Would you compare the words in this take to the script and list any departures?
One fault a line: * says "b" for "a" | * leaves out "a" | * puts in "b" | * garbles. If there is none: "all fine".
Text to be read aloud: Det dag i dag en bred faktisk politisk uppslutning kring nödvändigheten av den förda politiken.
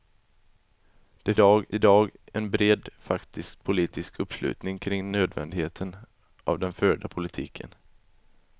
all fine